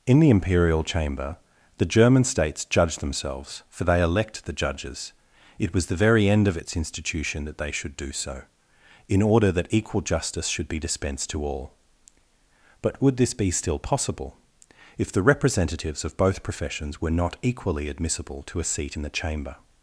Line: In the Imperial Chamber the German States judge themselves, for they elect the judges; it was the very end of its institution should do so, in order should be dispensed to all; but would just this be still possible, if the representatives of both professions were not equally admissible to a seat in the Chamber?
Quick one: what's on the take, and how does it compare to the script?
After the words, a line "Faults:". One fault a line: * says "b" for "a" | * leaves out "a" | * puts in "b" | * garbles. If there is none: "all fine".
In the Imperial Chamber the German States judge themselves, for they elect the judges; it was the very end of its institution that they should do so, in order that equal justice should be dispensed to all; but would this be still possible, if the representatives of both professions were not equally admissible to a seat in the Chamber?
Faults:
* puts in "that they"
* puts in "that equal justice"
* leaves out "just"